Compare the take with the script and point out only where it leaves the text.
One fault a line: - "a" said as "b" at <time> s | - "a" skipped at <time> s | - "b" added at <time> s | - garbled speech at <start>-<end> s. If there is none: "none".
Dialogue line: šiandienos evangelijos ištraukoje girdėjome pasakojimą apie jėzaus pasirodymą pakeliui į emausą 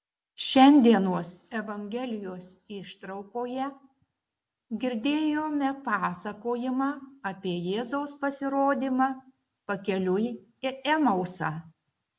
none